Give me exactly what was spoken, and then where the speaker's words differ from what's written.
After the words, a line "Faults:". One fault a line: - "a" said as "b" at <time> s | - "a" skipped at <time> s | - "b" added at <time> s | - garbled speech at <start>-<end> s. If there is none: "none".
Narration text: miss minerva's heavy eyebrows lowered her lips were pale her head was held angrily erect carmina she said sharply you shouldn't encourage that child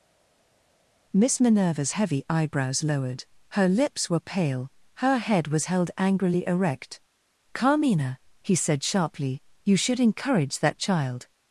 miss minerva's heavy eyebrows lowered her lips were pale her head was held angrily erect carmina he said sharply you should encourage that child
Faults:
- "she" said as "he" at 8.4 s
- "shouldn't" said as "should" at 9.8 s